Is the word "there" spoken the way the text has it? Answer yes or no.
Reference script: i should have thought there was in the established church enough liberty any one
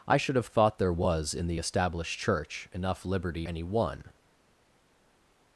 yes